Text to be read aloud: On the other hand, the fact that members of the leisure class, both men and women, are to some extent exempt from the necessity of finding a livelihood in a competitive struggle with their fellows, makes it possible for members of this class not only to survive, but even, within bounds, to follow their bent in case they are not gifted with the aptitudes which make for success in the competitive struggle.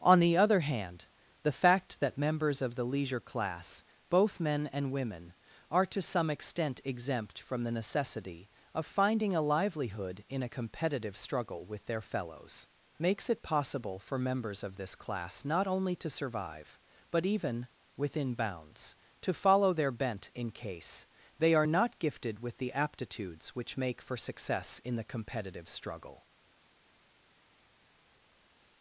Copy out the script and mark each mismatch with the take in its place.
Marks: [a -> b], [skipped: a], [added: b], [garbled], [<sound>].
On the other hand, the fact that members of the leisure class, both men and women, are to some extent exempt from the necessity of finding a livelihood in a competitive struggle with their fellows, makes it possible for members of this class not only to survive, but even, within bounds, to follow their bent in case they are not gifted with the aptitudes which make for success in the competitive struggle.